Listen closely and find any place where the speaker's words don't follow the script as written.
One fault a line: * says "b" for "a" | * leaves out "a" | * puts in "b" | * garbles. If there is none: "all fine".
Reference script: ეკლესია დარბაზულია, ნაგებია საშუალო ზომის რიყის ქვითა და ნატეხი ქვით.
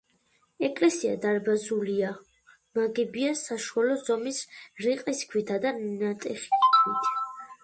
all fine